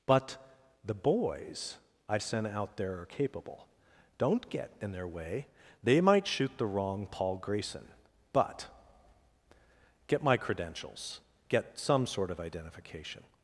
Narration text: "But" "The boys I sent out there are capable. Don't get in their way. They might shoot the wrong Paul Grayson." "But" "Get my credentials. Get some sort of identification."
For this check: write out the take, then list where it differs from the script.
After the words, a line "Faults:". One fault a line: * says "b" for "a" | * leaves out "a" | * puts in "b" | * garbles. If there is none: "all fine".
"But" "The boys I sent out there are capable. Don't get in their way. They might shoot the wrong Paul Grayson." "But" "Get my credentials. Get some sort of identification."
Faults:
all fine